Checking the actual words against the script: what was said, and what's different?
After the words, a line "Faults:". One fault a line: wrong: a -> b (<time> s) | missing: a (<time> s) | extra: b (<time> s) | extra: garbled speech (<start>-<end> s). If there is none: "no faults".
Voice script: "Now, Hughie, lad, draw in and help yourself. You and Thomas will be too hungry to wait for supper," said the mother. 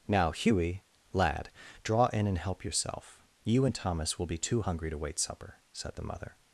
"Now, Hughie, lad, draw in and help yourself. You and Thomas will be too hungry to wait supper," said the mother.
Faults:
missing: for (5.2 s)